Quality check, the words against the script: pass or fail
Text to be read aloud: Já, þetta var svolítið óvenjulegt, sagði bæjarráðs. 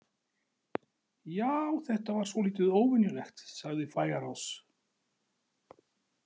pass